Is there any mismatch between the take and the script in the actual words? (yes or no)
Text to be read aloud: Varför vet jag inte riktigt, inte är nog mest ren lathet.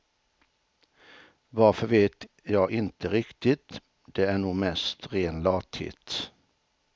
yes